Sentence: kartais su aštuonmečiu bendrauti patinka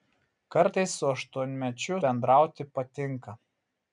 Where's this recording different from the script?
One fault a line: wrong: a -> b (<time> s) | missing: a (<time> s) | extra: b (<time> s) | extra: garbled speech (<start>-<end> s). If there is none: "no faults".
no faults